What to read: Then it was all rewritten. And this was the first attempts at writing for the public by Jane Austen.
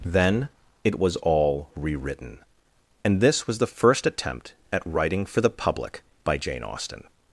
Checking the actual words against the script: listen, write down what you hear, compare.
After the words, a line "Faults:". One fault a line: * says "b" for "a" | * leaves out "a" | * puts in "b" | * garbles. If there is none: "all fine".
Then it was all rewritten. And this was the first attempt at writing for the public by Jane Austen.
Faults:
* says "attempt" for "attempts"